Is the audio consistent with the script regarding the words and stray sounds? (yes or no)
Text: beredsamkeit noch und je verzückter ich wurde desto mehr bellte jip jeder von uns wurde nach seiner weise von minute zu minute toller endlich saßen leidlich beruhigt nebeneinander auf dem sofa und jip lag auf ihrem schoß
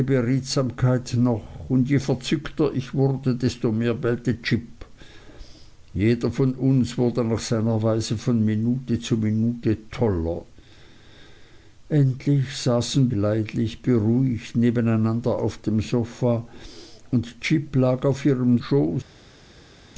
yes